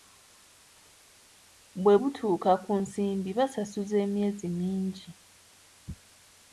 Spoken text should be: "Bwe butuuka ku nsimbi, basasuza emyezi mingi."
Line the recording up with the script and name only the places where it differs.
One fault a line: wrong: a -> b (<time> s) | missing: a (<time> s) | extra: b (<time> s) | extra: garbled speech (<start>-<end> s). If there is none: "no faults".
no faults